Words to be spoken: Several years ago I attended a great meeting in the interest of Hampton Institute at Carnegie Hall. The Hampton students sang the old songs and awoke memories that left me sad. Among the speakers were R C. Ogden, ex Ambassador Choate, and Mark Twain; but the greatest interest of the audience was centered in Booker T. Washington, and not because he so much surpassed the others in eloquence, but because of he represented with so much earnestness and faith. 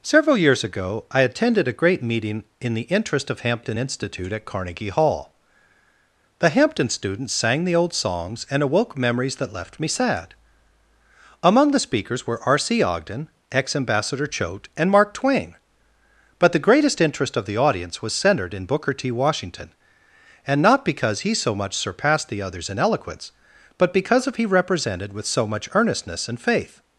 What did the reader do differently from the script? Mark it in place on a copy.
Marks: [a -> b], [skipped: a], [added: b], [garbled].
Several years ago I attended a great meeting in the interest of Hampton Institute at Carnegie Hall. The Hampton students sang the old songs and awoke memories that left me sad. Among the speakers were R C. Ogden, ex Ambassador Choate, and Mark Twain; but the greatest interest of the audience was centered in Booker T. Washington, and not because he so much surpassed the others in eloquence, but because of he represented with so much earnestness and faith.